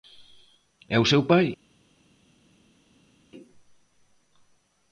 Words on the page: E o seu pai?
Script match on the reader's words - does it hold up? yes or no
yes